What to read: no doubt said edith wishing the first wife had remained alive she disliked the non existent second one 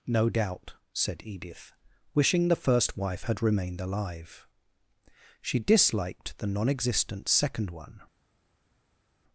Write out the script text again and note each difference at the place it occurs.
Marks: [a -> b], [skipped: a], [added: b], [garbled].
no doubt said edith wishing the first wife had remained alive she disliked the non existent second one